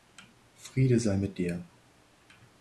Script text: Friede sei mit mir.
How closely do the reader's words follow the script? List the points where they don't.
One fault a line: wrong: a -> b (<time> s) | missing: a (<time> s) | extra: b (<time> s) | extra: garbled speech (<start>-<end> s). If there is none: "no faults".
wrong: mir -> dir (1.4 s)